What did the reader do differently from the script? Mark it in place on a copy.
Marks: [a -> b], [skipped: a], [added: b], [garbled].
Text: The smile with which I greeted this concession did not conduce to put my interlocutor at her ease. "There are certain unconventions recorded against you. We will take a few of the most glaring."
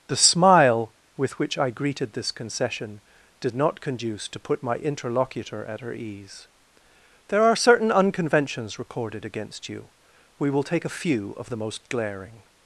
The smile with which I greeted this concession did not conduce to put my interlocutor at her ease. "There are certain unconventions recorded against you. We will take a few of the most glaring."